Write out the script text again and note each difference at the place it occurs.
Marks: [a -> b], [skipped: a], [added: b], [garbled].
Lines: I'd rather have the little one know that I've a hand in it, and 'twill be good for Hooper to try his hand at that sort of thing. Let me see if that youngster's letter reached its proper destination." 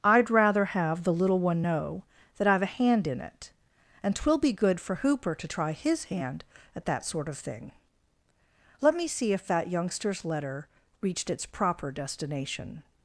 I'd rather have the little one know that I've a hand in it, and 'twill be good for Hooper to try his hand at that sort of thing. Let me see if that youngster's letter reached its proper destination."